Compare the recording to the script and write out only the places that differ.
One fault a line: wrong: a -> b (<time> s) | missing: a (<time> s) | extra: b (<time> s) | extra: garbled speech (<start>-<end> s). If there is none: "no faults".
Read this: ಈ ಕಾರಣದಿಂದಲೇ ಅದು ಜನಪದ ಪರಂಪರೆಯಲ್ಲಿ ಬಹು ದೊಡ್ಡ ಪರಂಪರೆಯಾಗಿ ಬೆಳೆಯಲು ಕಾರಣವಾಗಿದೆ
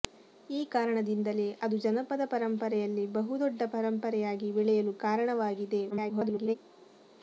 extra: garbled speech (5.9-6.6 s)